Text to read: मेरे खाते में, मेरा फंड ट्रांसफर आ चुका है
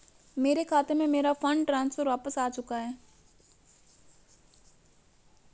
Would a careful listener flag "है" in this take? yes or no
no